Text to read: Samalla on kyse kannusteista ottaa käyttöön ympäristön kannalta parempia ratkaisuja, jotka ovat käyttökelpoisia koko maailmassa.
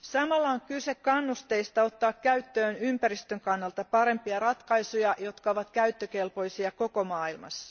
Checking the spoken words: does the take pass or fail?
pass